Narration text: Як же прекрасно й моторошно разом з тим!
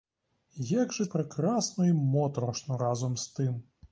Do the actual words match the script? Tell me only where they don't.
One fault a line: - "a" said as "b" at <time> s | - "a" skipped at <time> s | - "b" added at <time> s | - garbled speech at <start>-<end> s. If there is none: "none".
none